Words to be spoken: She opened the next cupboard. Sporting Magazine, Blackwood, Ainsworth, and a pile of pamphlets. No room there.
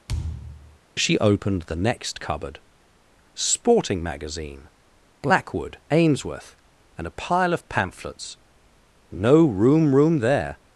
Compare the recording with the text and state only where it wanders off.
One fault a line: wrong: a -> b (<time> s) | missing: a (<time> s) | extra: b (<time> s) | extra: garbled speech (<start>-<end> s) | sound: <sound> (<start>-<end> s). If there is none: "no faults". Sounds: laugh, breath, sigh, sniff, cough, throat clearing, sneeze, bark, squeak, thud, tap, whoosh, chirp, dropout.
sound: thud (0.1-0.8 s)
extra: room (9.9 s)